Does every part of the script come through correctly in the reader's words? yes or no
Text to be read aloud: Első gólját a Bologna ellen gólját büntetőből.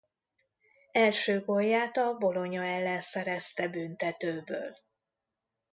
no